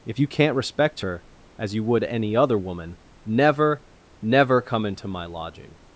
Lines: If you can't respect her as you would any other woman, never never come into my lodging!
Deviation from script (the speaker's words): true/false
false